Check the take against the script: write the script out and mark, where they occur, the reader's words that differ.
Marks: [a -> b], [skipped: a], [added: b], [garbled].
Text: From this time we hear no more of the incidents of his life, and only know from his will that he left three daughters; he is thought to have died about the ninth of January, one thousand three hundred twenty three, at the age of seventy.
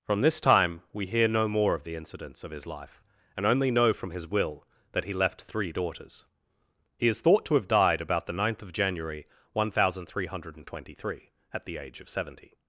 From this time we hear no more of the incidents of his life, and only know from his will that he left three daughters; he is thought to have died about the ninth of January, one thousand three hundred twenty three, at the age of seventy.